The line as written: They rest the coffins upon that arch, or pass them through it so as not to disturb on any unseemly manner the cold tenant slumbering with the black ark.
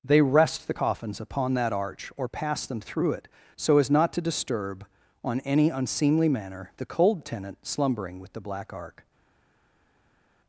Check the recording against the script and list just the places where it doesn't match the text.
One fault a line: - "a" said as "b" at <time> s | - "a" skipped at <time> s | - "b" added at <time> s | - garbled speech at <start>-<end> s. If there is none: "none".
none